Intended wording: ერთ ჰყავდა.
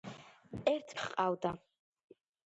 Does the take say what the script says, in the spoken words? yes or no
yes